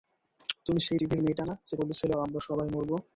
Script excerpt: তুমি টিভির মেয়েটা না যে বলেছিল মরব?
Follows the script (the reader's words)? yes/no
no